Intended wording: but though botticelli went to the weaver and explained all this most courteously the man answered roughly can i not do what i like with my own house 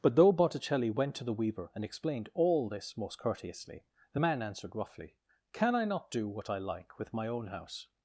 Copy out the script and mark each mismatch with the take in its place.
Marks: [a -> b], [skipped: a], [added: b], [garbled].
but though botticelli went to the weaver and explained all this most courteously the man answered roughly can i not do what i like with my own house